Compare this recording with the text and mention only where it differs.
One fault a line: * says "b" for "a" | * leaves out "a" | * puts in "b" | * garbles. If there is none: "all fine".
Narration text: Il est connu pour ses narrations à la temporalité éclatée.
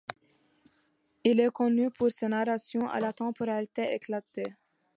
all fine